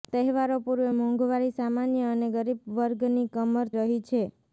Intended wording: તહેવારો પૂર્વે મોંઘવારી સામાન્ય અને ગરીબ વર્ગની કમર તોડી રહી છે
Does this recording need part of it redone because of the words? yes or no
yes